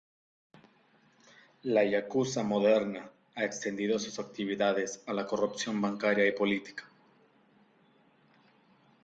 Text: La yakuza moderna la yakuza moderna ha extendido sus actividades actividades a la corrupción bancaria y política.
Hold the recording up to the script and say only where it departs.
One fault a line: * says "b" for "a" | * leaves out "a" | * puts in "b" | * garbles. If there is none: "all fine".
* leaves out "la yakuza moderna"
* leaves out "actividades"